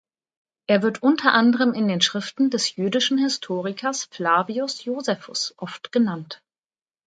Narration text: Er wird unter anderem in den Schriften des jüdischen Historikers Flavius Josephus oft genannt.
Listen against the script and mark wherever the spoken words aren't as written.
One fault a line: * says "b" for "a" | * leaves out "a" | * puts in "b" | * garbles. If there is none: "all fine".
all fine